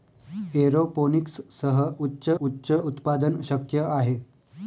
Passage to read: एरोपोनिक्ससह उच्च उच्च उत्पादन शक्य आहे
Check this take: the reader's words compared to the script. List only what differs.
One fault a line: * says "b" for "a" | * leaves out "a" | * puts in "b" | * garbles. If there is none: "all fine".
all fine